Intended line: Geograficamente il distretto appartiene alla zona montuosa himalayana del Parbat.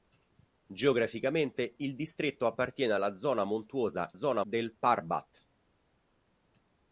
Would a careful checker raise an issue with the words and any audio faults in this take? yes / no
yes